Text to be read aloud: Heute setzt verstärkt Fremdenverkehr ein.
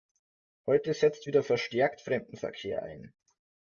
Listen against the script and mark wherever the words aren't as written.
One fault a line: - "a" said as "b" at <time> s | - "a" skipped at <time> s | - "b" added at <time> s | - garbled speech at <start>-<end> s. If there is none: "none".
- "wieder" added at 1.3 s